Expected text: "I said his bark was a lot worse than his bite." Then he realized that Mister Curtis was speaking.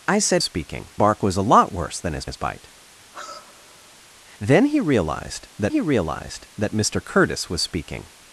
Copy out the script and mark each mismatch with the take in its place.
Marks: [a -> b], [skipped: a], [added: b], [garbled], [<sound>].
"I said [his -> speaking] bark was a lot worse than his [added: his] bite." [sigh] Then he realized that [added: he realized that] Mister Curtis was speaking.